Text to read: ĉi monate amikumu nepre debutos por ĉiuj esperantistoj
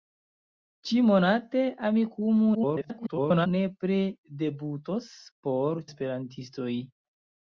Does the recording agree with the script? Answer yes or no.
no